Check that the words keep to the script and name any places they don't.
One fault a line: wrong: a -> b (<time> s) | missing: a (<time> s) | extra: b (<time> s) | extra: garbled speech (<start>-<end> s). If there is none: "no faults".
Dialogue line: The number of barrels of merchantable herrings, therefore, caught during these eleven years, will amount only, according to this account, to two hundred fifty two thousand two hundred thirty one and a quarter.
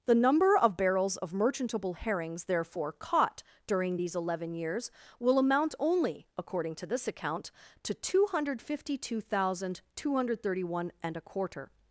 no faults